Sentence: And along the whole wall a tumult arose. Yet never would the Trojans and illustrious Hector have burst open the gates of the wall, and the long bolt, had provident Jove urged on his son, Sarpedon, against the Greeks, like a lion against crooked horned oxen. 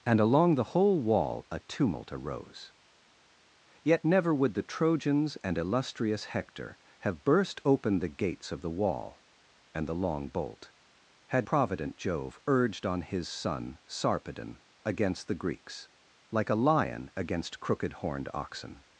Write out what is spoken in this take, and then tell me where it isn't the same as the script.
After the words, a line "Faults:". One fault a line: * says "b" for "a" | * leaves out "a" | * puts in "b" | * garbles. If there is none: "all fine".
And along the whole wall a tumult arose. Yet never would the Trojans and illustrious Hector have burst open the gates of the wall, and the long bolt, had provident Jove urged on his son, Sarpedon, against the Greeks, like a lion against crooked horned oxen.
Faults:
all fine